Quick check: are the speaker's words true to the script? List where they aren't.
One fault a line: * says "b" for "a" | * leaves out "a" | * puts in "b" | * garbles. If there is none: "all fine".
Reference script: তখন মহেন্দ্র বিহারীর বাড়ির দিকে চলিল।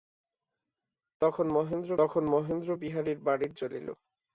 * puts in "তখন মহেন্দ্র"
* leaves out "দিকে"